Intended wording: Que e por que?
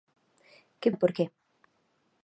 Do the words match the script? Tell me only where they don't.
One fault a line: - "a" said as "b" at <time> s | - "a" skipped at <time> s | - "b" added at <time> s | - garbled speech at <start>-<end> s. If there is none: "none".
none